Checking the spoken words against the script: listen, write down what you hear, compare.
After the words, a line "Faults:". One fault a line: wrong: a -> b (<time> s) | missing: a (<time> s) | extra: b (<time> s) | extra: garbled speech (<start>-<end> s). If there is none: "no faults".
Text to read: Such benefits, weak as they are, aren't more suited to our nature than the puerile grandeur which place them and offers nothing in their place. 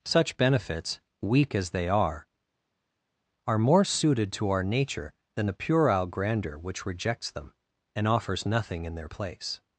Such benefits, weak as they are, are more suited to our nature than the puerile grandeur which rejects them and offers nothing in their place.
Faults:
wrong: aren't -> are (3.5 s)
wrong: place -> rejects (6.9 s)